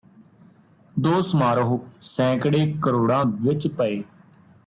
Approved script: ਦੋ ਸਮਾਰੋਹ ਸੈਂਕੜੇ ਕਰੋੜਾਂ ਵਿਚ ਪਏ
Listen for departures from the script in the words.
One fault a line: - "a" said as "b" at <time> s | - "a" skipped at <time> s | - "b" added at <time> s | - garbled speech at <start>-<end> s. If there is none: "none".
none